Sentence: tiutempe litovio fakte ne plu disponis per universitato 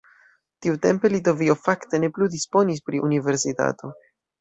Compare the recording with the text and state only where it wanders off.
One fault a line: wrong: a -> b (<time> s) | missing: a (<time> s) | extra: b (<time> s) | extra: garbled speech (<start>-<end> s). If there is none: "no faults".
wrong: per -> pri (2.9 s)